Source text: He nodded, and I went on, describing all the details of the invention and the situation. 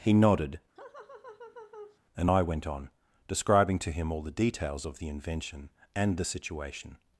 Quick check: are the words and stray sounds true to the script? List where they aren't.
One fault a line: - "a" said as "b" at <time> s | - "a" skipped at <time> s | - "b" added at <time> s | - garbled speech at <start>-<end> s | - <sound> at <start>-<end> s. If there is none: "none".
- laugh at 0.8-2.0 s
- "to him" added at 3.8 s